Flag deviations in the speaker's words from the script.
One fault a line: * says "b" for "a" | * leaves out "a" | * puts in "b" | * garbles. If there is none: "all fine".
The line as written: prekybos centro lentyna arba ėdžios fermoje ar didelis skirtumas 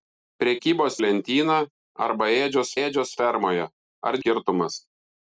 * leaves out "centro"
* puts in "ėdžios"
* leaves out "didelis"